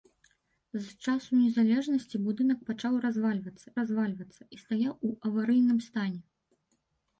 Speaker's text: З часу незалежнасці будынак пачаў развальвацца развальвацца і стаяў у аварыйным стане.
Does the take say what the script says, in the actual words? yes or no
yes